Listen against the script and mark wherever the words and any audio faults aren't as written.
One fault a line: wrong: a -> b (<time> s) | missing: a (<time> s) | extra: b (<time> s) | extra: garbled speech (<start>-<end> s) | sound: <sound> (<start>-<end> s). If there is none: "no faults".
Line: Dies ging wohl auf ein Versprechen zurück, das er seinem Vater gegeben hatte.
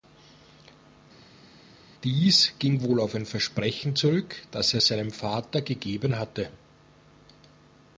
no faults